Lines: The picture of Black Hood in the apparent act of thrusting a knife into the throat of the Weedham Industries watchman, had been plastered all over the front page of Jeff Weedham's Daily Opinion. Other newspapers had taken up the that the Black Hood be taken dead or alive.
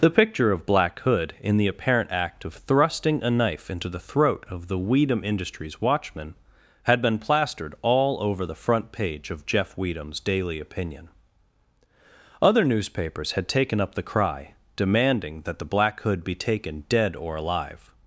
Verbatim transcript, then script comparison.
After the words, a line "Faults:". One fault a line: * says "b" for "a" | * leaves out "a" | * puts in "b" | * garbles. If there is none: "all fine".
The picture of Black Hood in the apparent act of thrusting a knife into the throat of the Weedham Industries watchman, had been plastered all over the front page of Jeff Weedham's Daily Opinion. Other newspapers had taken up the cry, demanding that the Black Hood be taken dead or alive.
Faults:
* puts in "cry demanding"